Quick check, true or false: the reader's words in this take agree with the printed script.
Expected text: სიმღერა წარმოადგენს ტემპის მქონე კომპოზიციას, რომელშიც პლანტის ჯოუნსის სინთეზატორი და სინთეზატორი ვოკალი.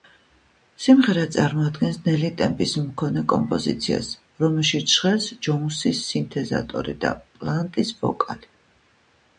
false